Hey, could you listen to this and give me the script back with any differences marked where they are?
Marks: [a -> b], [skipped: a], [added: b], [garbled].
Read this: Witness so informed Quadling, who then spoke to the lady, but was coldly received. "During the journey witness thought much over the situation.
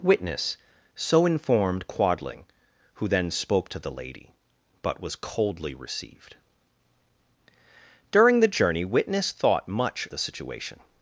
Witness so informed Quadling, who then spoke to the lady, but was coldly received. "During the journey witness thought much [skipped: over] the situation.